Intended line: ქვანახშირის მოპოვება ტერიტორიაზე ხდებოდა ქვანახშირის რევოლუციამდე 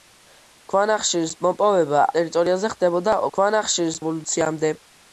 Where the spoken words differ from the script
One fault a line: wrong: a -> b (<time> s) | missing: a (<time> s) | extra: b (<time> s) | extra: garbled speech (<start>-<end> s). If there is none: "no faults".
no faults